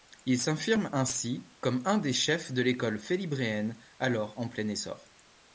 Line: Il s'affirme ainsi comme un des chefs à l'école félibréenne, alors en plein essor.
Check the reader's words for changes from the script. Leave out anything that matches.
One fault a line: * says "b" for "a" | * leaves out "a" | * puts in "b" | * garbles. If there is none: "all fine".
* says "de" for "à"